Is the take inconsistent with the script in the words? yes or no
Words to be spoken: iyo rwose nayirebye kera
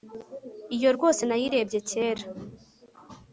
no